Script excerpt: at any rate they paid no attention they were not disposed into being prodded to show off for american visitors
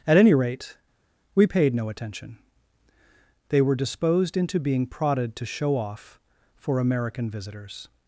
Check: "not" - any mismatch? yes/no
yes